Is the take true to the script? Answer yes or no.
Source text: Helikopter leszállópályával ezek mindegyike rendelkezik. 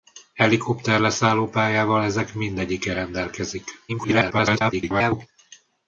no